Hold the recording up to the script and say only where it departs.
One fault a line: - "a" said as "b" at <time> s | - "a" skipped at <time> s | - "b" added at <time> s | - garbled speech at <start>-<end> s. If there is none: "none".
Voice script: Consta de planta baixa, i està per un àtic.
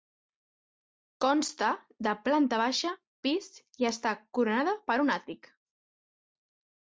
- "pis" added at 3.3 s
- "coronada" added at 4.4 s